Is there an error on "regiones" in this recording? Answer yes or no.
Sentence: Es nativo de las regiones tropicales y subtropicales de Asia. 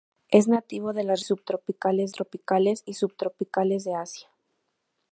yes